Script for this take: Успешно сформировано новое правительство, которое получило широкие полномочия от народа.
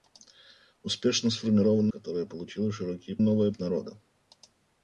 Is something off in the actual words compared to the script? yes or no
yes